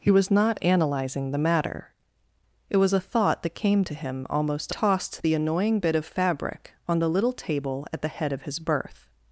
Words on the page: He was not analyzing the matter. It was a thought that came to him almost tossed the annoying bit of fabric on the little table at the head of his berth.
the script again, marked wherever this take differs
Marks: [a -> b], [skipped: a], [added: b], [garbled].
He was not analyzing the matter. It was a thought that came to him almost tossed the annoying bit of fabric on the little table at the head of his berth.